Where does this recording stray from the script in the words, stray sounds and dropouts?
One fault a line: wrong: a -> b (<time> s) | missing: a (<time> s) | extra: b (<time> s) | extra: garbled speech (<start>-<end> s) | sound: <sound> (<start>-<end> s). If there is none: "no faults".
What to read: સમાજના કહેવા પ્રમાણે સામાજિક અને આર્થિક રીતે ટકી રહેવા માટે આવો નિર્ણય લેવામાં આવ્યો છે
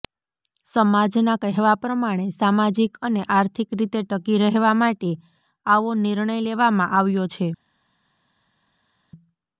no faults